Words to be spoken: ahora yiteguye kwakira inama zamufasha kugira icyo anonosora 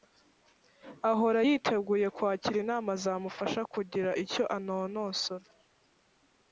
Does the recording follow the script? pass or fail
pass